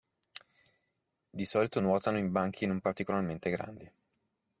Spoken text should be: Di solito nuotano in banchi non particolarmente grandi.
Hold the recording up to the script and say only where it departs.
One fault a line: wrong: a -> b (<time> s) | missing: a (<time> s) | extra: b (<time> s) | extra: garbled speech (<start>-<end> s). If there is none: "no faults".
no faults